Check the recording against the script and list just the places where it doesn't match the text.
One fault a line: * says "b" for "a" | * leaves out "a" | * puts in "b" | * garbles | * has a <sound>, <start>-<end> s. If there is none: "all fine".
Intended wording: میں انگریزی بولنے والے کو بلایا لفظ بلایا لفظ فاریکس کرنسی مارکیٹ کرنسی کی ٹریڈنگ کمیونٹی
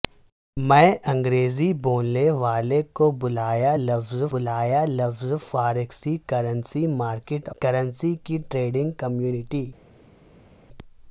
all fine